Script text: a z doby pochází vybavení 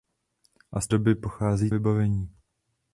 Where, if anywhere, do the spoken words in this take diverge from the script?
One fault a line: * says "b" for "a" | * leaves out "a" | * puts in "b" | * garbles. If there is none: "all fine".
all fine